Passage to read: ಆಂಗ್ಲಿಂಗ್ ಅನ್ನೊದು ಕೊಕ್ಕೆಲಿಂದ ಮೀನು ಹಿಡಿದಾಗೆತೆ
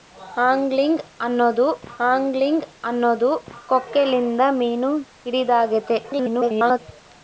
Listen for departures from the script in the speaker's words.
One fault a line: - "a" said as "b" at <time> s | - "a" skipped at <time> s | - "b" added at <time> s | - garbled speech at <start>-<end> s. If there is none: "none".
- "ಆಂಗ್ಲಿಂಗ್ ಅನ್ನೊದು" added at 2.1 s
- garbled speech at 6.0-6.8 s